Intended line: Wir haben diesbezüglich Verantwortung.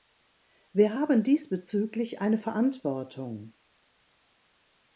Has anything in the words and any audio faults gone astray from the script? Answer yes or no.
yes